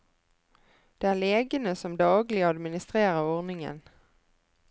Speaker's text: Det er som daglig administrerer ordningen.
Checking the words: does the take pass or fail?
fail